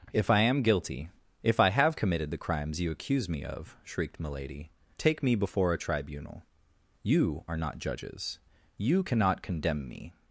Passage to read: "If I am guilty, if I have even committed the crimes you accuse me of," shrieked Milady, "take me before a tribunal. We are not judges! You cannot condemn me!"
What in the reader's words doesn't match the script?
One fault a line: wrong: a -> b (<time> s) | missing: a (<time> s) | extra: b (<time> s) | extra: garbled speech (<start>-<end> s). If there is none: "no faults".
missing: even (1.9 s)
wrong: We -> You (7.0 s)